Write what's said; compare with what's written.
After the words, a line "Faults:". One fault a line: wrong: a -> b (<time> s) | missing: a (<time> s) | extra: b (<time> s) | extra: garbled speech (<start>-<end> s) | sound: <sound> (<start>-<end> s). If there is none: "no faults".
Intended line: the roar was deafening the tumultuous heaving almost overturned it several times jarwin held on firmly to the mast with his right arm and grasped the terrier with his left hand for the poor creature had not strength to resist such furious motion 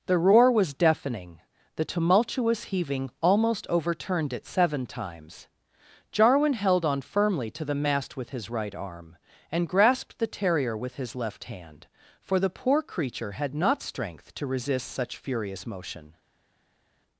the roar was deafening the tumultuous heaving almost overturned it seven times jarwin held on firmly to the mast with his right arm and grasped the terrier with his left hand for the poor creature had not strength to resist such furious motion
Faults:
wrong: several -> seven (4.5 s)